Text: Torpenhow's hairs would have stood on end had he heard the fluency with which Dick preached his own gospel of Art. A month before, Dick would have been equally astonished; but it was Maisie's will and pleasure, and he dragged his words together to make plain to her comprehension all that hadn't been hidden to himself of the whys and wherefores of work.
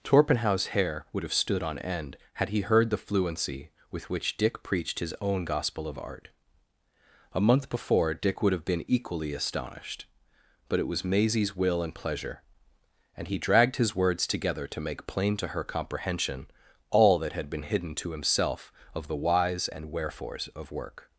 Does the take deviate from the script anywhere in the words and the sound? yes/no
yes